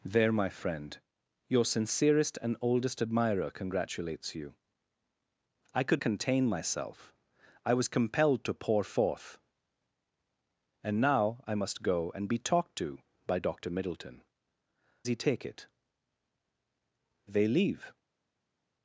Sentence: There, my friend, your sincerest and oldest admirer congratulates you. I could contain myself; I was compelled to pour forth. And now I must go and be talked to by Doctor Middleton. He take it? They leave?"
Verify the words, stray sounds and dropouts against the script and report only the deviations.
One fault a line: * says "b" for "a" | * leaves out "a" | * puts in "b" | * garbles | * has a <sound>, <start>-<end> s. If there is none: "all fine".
all fine